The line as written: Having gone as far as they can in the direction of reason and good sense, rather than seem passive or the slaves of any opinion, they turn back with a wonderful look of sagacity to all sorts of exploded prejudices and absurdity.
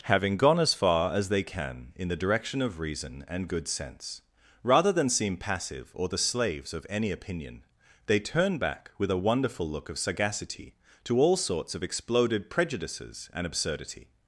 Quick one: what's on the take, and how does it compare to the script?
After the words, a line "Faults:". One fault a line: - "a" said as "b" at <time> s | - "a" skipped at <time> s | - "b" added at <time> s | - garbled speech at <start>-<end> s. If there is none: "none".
Having gone as far as they can in the direction of reason and good sense, rather than seem passive or the slaves of any opinion, they turn back with a wonderful look of sagacity to all sorts of exploded prejudices and absurdity.
Faults:
none